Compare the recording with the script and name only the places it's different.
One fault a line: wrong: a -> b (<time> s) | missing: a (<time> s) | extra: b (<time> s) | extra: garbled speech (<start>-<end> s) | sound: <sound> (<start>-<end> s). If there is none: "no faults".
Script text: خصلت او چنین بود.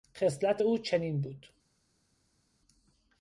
no faults